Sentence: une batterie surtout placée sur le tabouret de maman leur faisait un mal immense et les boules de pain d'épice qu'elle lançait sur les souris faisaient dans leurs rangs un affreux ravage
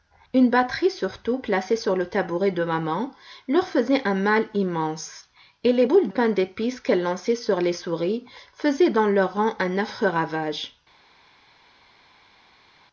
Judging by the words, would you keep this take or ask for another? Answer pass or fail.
fail